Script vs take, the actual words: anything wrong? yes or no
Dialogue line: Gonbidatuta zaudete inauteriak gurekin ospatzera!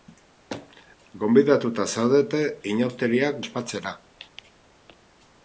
yes